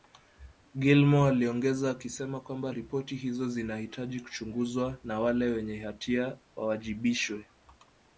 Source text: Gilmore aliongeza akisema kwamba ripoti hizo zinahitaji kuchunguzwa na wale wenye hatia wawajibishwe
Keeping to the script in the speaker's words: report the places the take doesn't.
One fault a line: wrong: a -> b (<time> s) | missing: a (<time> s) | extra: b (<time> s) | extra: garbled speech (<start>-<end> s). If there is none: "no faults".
no faults